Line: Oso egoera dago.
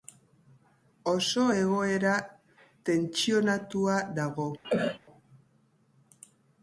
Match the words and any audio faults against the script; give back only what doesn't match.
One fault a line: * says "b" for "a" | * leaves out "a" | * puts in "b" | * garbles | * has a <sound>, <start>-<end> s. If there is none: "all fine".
* puts in "tentsionatua"
* has a cough, 4.6-5.0 s